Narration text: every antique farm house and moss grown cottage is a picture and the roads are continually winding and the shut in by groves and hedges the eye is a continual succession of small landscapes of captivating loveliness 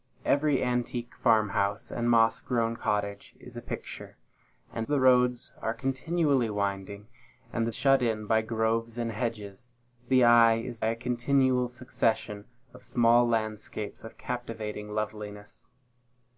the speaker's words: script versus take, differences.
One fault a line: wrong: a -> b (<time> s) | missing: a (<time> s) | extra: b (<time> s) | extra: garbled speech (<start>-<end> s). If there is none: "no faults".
no faults